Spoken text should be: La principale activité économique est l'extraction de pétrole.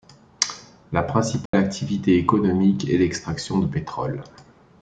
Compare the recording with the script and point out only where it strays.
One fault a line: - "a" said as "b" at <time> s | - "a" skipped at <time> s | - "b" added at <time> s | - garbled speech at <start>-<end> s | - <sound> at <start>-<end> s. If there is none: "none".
- dropout at 1.5-1.5 s